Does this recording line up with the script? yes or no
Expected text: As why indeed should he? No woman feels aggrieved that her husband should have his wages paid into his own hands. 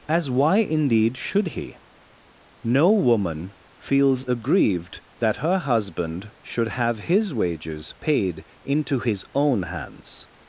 yes